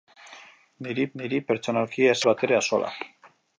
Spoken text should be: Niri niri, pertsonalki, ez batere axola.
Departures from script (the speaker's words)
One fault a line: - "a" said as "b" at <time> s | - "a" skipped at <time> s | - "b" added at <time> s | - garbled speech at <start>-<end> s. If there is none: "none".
none